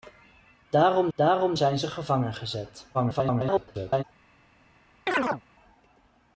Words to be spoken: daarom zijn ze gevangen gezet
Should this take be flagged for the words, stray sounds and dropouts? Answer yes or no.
yes